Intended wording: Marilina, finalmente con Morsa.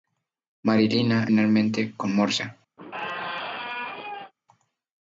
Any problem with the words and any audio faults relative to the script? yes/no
yes